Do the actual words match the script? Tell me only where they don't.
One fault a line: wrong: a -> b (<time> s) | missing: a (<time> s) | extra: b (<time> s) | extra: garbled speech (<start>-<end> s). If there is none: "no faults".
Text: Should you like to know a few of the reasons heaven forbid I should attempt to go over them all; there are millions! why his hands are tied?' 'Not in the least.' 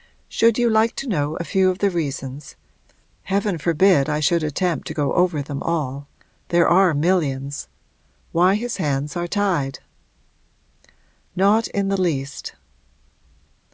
no faults